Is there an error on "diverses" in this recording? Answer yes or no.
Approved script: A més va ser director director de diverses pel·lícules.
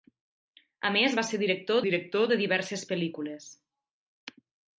no